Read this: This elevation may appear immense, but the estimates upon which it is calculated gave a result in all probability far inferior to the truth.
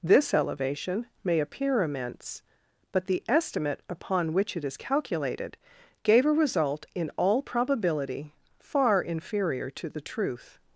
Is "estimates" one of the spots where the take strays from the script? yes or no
yes